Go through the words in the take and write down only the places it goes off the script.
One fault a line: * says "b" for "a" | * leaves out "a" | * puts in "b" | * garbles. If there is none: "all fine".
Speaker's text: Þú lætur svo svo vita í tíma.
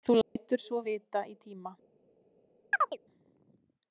* leaves out "svo"